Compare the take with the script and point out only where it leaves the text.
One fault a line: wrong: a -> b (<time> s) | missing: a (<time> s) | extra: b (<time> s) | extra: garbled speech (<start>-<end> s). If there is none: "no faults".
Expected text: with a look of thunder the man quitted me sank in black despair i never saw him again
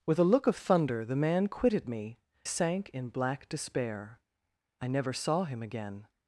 no faults